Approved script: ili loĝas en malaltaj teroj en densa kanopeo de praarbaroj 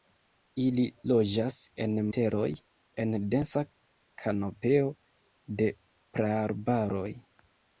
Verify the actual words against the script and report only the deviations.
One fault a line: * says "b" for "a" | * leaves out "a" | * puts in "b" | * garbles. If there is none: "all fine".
* leaves out "malaltaj"